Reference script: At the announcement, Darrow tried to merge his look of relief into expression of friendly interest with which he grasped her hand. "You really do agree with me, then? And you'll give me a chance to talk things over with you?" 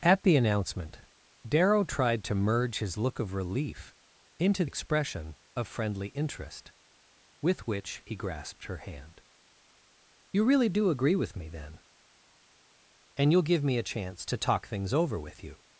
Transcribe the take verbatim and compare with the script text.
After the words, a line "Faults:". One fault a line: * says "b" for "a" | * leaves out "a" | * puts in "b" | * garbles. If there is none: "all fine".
At the announcement, Darrow tried to merge his look of relief into expression of friendly interest with which he grasped her hand. "You really do agree with me, then? And you'll give me a chance to talk things over with you?"
Faults:
all fine